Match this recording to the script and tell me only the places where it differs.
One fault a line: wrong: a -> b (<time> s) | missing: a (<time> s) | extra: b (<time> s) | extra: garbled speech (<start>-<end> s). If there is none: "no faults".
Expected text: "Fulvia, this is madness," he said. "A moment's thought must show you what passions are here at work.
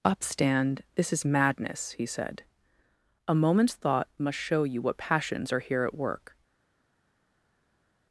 wrong: Fulvia -> Upstand (0.0 s)